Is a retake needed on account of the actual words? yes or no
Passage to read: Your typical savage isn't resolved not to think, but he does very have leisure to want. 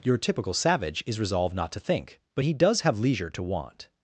yes